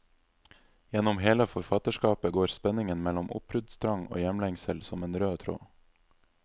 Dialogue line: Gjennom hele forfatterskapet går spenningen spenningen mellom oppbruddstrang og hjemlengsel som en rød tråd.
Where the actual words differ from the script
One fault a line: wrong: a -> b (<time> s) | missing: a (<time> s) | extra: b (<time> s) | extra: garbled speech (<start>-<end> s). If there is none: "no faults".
missing: spenningen (3.0 s)